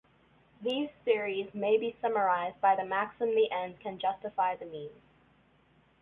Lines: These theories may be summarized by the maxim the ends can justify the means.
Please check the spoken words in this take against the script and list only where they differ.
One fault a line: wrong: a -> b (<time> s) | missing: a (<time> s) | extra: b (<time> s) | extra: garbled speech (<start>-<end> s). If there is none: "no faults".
no faults